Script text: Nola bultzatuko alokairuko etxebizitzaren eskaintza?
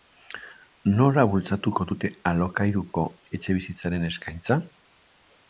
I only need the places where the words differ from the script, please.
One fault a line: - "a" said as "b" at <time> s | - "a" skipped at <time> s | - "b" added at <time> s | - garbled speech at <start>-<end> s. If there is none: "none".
- "dute" added at 1.9 s